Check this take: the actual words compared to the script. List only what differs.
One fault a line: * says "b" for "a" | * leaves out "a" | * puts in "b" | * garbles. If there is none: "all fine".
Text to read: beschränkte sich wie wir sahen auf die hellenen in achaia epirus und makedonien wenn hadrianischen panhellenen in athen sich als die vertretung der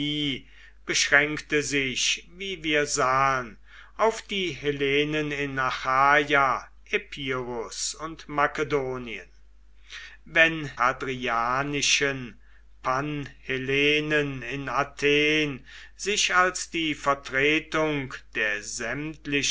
all fine